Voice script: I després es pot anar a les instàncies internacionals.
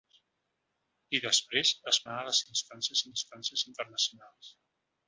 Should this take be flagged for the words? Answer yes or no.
yes